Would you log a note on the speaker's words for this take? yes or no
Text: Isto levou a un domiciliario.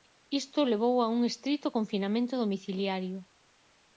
yes